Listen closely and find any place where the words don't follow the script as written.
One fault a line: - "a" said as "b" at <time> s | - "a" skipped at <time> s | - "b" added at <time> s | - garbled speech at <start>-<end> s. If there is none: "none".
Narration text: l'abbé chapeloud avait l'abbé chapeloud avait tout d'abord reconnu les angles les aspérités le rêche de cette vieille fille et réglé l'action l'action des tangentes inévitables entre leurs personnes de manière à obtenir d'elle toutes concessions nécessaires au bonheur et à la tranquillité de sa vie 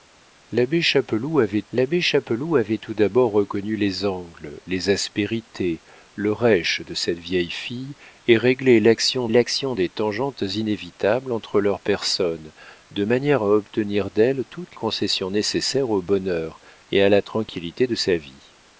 none